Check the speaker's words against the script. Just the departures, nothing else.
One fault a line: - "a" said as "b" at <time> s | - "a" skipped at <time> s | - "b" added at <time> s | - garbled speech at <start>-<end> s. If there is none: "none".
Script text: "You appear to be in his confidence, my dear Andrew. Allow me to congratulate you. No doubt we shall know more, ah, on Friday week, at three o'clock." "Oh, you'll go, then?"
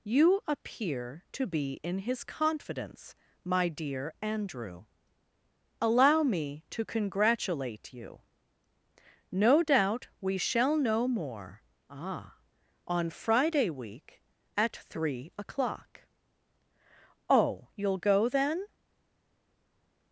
none